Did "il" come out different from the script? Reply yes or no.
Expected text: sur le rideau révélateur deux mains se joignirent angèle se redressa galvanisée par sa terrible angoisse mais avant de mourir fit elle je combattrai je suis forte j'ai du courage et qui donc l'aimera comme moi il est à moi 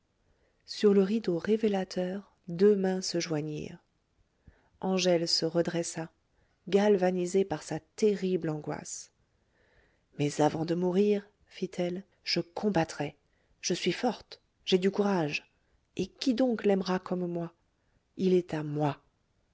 no